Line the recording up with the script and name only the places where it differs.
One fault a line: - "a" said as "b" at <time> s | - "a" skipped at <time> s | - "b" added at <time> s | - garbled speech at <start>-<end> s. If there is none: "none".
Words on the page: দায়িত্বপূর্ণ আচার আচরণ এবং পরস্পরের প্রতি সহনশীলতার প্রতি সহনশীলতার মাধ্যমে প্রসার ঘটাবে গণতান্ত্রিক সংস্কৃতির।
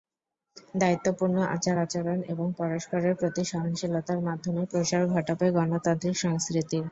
- "প্রতি সহনশীলতার" skipped at 4.2 s